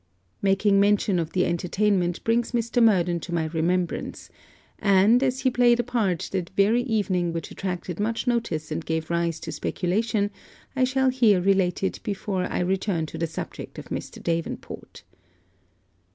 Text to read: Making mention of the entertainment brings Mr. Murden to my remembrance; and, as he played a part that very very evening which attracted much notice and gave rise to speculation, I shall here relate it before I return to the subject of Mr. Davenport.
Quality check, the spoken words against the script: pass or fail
fail